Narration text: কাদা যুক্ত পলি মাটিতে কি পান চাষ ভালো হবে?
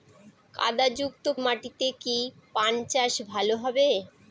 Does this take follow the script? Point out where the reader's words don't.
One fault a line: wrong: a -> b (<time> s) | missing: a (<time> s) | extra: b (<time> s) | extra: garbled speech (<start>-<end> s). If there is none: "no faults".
missing: পলি (1.2 s)